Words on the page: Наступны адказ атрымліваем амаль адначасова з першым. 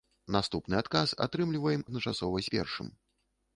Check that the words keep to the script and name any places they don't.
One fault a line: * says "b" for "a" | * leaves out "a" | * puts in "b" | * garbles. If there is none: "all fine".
* leaves out "амаль"